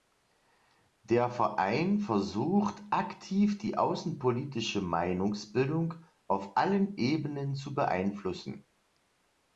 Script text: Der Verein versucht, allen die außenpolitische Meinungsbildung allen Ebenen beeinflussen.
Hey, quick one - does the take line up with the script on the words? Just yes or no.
no